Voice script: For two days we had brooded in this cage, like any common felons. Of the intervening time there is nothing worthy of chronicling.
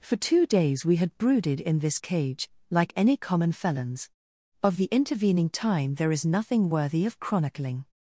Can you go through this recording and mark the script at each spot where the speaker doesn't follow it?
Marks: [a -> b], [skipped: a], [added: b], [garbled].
For two days we had brooded in this cage, like any common felons. Of the intervening time there is nothing worthy of chronicling.